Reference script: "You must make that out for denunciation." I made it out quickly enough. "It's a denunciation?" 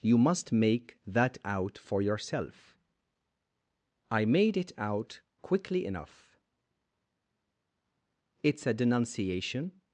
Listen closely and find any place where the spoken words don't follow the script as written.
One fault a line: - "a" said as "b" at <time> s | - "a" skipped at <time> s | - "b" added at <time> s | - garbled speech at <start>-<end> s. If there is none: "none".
- "denunciation" said as "yourself" at 2.0 s